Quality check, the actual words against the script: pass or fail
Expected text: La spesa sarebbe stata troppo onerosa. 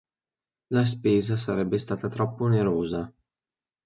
pass